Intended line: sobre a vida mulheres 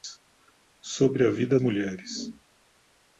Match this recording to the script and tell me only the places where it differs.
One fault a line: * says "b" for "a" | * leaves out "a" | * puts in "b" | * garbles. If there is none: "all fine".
all fine